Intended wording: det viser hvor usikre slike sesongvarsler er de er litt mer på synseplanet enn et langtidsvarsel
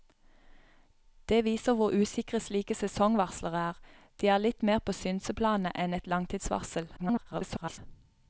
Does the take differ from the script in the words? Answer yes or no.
yes